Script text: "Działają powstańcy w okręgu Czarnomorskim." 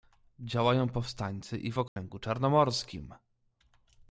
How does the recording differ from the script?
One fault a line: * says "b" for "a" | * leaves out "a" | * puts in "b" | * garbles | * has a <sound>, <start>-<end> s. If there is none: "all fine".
* puts in "i"
* has a dropout, 1.9-2.0 s